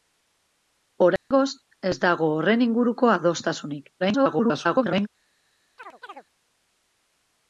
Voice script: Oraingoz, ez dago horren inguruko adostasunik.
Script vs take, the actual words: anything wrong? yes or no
yes